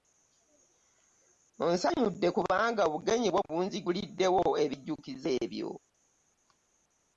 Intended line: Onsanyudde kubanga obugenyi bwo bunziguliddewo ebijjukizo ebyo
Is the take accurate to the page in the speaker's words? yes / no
yes